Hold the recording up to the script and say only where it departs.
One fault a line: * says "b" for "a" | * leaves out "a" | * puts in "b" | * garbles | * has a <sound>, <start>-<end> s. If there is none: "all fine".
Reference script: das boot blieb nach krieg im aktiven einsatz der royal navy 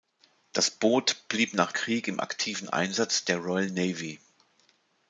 all fine